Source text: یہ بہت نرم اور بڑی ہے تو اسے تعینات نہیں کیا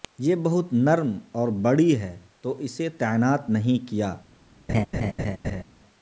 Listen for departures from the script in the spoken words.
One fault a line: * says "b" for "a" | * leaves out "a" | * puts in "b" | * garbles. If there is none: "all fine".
all fine